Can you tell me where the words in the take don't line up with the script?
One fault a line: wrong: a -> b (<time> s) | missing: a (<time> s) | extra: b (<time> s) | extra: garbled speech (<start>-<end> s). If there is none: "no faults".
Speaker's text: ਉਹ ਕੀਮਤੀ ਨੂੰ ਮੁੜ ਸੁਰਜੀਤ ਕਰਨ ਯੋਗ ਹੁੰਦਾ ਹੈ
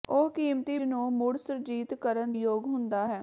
no faults